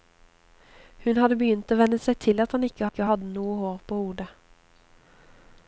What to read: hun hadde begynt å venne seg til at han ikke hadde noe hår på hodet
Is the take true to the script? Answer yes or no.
no